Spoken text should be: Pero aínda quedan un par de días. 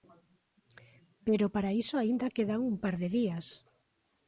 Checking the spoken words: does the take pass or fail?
fail